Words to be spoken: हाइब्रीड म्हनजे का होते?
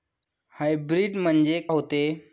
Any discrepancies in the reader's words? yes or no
yes